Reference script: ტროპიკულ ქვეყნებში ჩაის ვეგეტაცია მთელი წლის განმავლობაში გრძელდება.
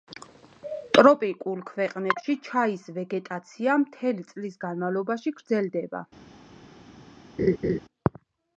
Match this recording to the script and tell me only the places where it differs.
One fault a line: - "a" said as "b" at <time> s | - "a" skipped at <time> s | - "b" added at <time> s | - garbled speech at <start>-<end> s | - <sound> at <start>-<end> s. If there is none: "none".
- laugh at 7.4-7.8 s